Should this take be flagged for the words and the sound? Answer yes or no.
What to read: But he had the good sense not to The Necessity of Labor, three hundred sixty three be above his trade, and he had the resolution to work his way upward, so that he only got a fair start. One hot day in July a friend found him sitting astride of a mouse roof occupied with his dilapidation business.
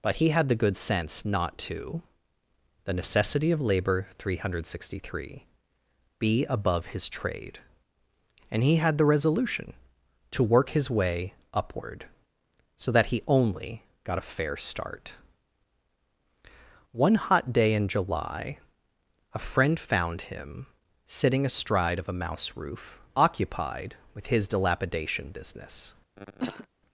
yes